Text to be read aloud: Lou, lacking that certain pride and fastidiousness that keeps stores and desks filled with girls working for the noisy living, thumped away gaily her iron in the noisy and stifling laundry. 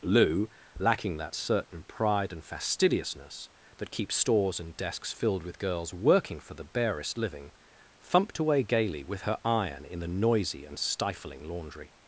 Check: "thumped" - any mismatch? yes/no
no